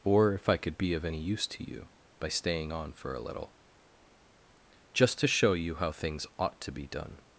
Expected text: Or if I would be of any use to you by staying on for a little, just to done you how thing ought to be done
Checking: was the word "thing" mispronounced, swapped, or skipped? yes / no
yes